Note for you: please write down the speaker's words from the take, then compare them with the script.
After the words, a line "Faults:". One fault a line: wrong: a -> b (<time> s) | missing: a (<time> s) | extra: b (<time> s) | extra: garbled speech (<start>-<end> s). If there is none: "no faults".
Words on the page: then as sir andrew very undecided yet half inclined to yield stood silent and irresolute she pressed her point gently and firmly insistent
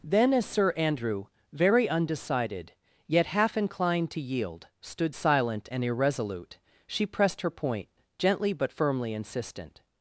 then as sir andrew very undecided yet half inclined to yield stood silent and irresolute she pressed her point gently but firmly insistent
Faults:
wrong: and -> but (8.5 s)